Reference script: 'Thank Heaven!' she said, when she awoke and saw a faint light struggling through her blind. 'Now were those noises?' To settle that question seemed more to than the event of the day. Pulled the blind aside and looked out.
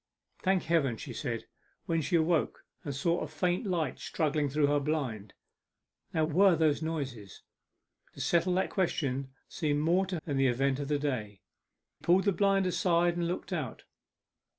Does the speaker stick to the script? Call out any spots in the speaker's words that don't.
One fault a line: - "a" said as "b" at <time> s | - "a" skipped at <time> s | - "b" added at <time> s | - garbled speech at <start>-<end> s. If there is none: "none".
none